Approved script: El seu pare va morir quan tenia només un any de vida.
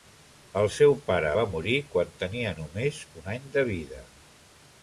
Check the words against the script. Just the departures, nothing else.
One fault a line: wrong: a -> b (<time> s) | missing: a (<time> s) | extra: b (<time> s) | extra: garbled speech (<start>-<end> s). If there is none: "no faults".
no faults